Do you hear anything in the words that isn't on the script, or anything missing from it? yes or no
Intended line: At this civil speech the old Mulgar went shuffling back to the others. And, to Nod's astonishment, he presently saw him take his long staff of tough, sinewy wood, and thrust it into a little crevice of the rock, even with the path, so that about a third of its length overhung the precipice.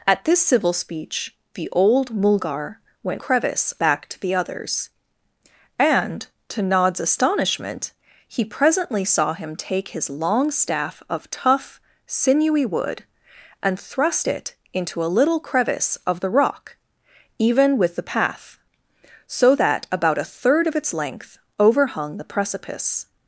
yes